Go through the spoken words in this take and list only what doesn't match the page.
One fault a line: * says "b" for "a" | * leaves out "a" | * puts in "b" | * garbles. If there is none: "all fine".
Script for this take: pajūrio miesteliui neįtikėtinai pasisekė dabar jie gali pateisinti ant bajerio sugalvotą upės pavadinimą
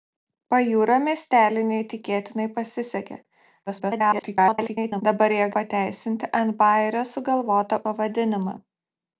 * garbles
* leaves out "gali"
* leaves out "upės"